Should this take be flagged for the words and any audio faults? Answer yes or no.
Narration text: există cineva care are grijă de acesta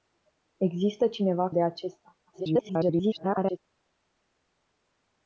yes